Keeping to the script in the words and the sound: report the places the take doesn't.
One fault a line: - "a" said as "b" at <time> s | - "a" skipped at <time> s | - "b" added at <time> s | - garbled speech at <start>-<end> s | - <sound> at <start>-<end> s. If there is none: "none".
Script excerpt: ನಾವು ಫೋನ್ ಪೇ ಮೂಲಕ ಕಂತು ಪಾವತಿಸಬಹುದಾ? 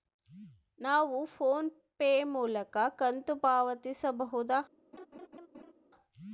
- laugh at 4.9-5.7 s